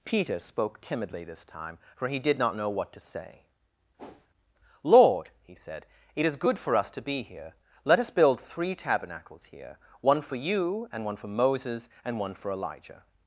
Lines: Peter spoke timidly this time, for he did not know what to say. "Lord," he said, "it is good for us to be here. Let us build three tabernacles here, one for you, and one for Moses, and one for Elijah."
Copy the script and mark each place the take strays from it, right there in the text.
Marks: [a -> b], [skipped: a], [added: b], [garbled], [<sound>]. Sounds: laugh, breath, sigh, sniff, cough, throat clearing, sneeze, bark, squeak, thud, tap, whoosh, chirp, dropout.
Peter spoke timidly this time, for he did not know what to say. [whoosh] "Lord," he said, "it is good for us to be here. Let us build three tabernacles here, one for you, and one for Moses, and one for Elijah."